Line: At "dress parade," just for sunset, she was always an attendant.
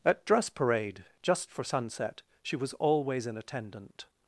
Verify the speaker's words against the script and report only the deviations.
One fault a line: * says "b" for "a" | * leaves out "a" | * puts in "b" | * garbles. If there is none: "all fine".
all fine